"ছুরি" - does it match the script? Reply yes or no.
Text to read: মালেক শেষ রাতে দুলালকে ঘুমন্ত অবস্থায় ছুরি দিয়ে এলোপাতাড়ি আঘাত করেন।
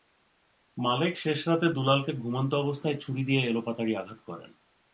yes